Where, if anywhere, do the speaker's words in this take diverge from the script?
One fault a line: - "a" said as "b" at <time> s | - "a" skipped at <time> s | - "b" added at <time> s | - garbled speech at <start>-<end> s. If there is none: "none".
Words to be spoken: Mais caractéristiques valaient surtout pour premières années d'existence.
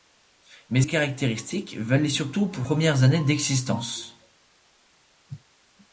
none